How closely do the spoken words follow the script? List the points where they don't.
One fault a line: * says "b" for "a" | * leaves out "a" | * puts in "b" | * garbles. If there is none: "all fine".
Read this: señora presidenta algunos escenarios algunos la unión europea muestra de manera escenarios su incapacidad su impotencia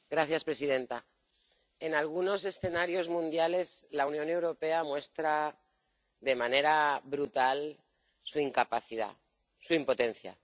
* puts in "en"
* says "mundiales" for "algunos"
* says "brutal" for "escenarios"